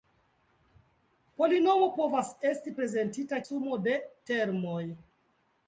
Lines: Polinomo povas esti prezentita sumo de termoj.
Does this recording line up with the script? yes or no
yes